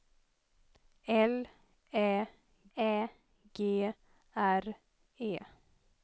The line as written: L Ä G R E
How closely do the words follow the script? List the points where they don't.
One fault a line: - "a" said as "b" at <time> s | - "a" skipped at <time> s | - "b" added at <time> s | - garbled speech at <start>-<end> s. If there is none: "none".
- "Ä" added at 2.8 s